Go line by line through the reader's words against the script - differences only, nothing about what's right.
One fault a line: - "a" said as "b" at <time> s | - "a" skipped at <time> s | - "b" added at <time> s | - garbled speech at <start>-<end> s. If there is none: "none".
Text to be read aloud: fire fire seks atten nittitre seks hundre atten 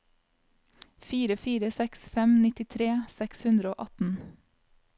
- "atten" said as "fem" at 2.1 s
- "og" added at 3.7 s